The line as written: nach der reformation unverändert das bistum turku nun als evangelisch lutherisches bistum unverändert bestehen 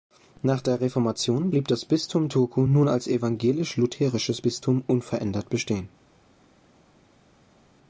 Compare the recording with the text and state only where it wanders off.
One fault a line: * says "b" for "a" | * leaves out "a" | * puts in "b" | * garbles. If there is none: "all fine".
* says "blieb" for "unverändert"